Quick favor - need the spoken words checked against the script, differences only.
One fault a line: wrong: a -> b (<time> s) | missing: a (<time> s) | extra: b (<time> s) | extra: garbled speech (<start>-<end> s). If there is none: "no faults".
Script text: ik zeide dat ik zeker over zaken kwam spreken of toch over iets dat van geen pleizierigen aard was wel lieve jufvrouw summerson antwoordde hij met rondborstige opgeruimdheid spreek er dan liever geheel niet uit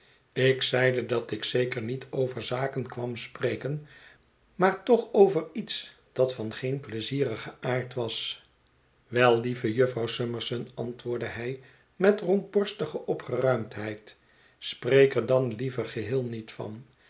extra: niet (1.8 s)
wrong: of -> maar (4.5 s)
wrong: uit -> van (16.5 s)